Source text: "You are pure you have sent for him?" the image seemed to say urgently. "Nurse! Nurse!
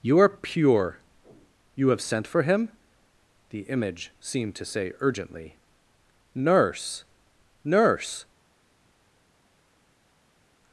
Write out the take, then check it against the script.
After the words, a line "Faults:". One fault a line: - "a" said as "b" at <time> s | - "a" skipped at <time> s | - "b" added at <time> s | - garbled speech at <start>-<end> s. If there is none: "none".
"You are pure you have sent for him?" the image seemed to say urgently. "Nurse! Nurse!
Faults:
none